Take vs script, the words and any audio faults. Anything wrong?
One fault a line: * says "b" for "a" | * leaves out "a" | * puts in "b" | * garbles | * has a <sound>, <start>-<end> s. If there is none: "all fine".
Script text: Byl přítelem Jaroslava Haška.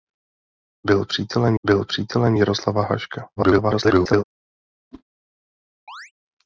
* puts in "byl přítelem"
* garbles
* has a whoosh, 4.9-5.0 s
* has a chirp, 5.9-6.1 s